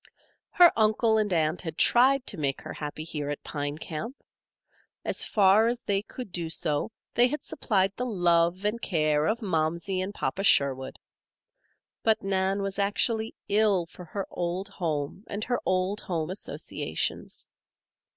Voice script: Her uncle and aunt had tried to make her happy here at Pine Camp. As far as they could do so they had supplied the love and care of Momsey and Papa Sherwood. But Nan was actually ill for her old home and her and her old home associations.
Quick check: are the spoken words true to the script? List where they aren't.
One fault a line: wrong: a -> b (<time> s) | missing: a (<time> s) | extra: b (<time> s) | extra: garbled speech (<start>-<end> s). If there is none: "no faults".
missing: and her (15.6 s)